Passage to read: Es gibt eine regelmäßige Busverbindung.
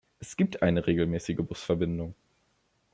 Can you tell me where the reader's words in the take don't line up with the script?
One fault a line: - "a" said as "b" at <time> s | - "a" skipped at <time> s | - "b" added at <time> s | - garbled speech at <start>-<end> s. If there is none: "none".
none